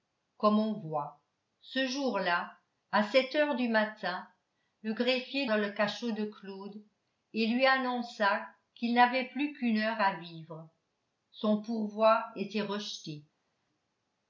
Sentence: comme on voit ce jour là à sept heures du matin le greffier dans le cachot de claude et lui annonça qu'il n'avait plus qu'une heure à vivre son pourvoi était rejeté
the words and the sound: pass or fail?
pass